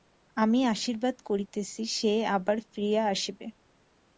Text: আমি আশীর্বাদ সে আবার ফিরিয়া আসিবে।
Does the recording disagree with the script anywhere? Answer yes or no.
yes